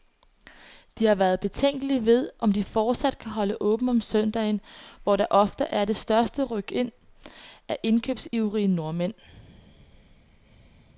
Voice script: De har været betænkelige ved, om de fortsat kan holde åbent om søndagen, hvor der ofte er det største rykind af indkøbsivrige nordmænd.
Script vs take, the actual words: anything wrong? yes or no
no